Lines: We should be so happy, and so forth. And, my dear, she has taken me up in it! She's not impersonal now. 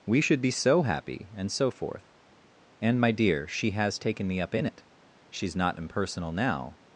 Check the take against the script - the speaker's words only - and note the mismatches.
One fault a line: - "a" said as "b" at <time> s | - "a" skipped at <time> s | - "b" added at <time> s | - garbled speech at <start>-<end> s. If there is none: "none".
none